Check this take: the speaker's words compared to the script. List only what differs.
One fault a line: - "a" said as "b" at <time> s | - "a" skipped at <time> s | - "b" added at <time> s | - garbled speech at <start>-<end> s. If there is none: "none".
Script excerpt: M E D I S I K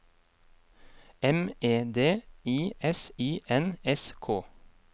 - "N S" added at 3.5 s